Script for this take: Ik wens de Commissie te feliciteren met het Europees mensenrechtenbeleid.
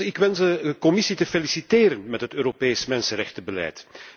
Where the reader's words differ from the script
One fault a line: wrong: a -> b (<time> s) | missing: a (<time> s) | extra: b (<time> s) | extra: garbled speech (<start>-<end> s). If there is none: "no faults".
no faults